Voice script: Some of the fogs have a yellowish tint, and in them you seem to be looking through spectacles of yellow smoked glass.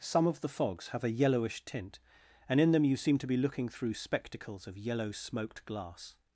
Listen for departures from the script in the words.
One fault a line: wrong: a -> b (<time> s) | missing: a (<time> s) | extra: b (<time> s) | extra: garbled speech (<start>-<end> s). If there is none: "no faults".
no faults